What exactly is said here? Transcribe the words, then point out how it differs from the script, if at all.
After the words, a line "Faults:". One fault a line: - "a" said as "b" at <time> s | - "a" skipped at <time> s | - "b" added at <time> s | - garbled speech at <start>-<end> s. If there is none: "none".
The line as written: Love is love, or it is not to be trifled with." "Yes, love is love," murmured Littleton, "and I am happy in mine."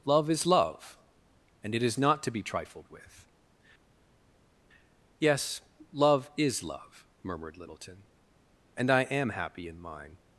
Love is love, and it is not to be trifled with." "Yes, love is love," murmured Littleton, "and I am happy in mine."
Faults:
- "or" said as "and" at 1.6 s